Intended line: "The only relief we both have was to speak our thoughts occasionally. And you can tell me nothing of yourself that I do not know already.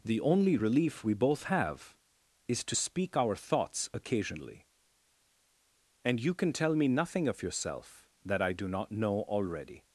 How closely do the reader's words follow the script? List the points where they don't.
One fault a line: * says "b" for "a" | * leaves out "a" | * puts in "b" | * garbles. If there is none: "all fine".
* says "is" for "was"